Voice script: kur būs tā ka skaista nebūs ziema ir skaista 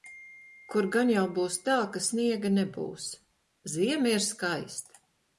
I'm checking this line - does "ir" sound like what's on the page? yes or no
yes